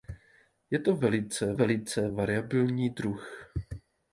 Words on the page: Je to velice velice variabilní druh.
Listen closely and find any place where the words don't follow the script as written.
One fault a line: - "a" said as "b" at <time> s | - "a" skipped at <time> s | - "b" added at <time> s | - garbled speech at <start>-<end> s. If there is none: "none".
none